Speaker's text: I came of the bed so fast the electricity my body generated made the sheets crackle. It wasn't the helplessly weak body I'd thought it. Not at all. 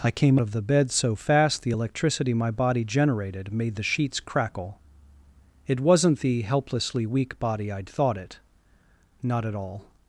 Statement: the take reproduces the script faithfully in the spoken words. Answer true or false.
true